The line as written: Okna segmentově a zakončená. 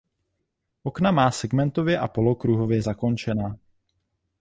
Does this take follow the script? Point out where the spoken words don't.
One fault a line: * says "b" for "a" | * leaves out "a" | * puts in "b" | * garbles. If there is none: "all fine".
* puts in "má"
* puts in "polokruhově"